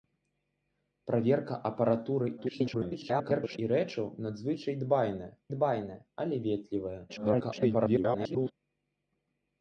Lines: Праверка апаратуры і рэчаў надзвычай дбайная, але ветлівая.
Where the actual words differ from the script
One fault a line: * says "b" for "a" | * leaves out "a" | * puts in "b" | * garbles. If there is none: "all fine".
* garbles
* puts in "дбайная"
* garbles